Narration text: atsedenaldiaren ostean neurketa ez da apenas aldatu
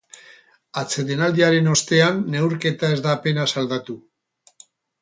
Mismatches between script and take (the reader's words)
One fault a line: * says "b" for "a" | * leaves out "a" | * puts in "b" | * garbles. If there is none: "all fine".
all fine